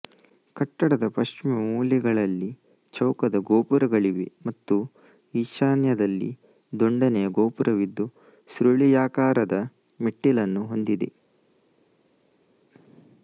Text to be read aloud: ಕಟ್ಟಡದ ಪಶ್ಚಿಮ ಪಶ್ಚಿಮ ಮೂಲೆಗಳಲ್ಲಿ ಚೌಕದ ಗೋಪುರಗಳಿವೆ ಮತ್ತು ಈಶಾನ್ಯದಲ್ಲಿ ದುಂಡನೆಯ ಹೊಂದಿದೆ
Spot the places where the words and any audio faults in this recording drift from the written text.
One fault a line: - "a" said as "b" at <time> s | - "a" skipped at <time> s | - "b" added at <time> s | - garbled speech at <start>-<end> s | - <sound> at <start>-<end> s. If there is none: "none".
- "ಪಶ್ಚಿಮ" skipped at 1.5 s
- "ಗೋಪುರವಿದ್ದು ಸುರುಳಿಯಾಕಾರದ ಮೆಟ್ಟಿಲನ್ನು" added at 7.3 s